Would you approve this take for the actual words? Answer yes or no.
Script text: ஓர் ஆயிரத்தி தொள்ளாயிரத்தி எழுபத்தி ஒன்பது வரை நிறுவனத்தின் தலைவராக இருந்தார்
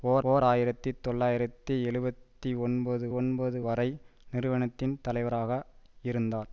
no